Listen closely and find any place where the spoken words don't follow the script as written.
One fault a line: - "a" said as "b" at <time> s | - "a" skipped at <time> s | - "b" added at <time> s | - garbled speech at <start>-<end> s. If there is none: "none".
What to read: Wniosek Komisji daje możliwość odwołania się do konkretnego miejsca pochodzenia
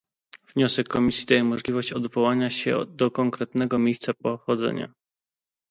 none